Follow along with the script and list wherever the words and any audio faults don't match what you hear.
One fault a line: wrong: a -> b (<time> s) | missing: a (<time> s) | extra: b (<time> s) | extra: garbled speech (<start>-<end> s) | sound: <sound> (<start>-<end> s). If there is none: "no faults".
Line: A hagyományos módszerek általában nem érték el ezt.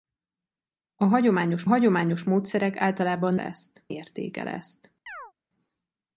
extra: hagyományos (1.6 s)
wrong: nem -> ezt (3.4 s)
sound: chirp (5.1-5.3 s)